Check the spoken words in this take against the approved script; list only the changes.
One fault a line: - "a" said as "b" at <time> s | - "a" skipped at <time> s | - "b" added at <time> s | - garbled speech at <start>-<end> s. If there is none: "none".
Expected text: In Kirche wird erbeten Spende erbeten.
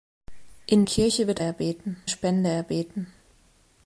none